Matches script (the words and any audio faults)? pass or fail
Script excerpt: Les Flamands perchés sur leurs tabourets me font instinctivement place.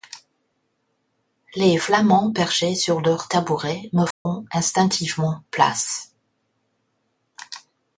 fail